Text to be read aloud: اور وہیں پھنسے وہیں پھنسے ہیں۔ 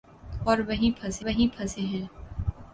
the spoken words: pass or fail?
pass